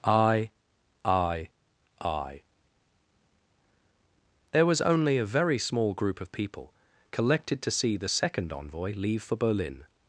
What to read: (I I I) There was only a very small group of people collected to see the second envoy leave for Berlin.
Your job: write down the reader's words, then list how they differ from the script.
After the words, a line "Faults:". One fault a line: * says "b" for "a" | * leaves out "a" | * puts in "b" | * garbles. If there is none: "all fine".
(I I I) There was only a very small group of people collected to see the second envoy leave for Berlin.
Faults:
all fine